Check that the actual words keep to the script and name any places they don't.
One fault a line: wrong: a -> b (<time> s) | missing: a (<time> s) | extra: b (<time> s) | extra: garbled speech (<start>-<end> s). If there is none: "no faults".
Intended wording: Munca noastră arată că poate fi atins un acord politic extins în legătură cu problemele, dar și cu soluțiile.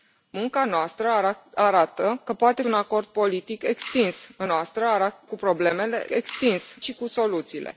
missing: fi atins (2.6 s)
wrong: legătură -> noastră (4.4 s)
wrong: dar -> extins (6.1 s)